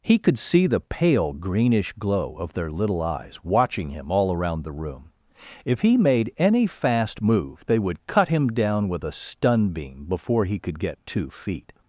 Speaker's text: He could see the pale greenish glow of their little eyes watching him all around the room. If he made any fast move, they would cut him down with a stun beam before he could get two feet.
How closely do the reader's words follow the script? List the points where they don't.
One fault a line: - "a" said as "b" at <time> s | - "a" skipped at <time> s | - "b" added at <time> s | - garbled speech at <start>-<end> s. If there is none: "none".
none